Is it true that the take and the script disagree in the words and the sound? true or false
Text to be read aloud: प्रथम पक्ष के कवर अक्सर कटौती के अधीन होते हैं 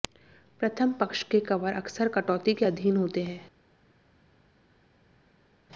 false